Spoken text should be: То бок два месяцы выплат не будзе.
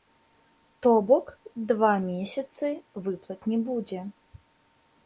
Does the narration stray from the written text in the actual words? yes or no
no